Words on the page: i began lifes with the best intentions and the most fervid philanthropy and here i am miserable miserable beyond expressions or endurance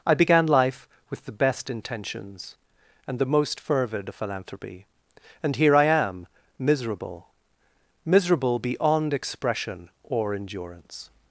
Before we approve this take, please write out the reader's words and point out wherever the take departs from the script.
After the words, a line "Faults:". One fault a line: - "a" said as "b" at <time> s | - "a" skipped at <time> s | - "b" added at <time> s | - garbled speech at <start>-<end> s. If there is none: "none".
i began life with the best intentions and the most fervid philanthropy and here i am miserable miserable beyond expression or endurance
Faults:
- "lifes" said as "life" at 0.5 s
- "expressions" said as "expression" at 9.1 s